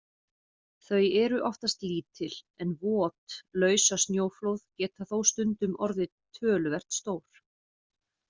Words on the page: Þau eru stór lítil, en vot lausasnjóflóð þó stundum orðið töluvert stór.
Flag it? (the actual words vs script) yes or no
yes